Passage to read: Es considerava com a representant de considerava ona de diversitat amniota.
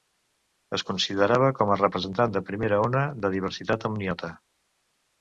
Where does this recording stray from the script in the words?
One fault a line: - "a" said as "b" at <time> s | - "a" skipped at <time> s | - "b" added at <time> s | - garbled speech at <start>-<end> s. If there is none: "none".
- "considerava" said as "primera" at 2.5 s